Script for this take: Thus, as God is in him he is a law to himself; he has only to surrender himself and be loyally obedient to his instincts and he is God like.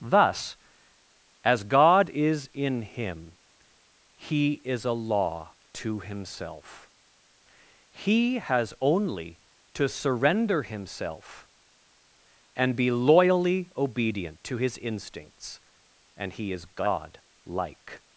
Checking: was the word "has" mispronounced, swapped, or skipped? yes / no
no